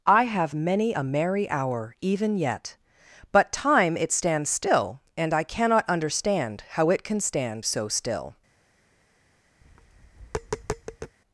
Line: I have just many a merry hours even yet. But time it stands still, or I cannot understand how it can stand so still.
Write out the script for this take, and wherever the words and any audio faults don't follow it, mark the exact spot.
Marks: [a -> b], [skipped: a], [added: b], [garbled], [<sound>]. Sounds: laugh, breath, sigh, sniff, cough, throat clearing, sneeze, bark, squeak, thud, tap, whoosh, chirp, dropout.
I have [skipped: just] many a merry [hours -> hour] even yet. But time it stands still, [or -> and] I cannot understand how it can stand so still. [tap]